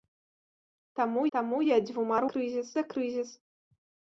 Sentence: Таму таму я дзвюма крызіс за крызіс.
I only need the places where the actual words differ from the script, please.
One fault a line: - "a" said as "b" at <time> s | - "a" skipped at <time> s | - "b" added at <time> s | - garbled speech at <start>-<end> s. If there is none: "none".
none